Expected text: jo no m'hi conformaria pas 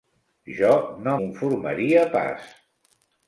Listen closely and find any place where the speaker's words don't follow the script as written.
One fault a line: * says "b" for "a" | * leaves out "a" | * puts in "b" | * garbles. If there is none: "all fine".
* leaves out "m'hi"